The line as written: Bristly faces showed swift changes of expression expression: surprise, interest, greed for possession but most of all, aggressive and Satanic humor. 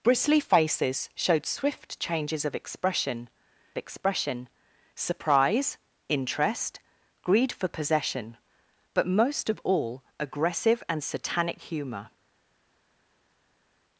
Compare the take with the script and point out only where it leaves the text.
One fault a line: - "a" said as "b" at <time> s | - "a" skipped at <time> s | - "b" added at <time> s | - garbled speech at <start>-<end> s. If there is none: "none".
none